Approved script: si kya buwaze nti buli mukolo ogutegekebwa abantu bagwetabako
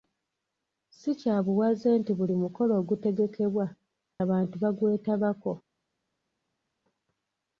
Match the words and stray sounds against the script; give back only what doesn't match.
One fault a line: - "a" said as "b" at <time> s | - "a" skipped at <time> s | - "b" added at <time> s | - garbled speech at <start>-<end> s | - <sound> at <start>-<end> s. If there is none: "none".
none